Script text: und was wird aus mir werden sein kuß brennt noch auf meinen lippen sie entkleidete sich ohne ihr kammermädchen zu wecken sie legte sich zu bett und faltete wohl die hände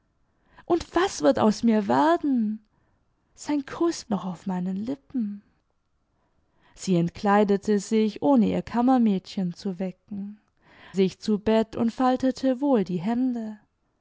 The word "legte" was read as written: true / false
false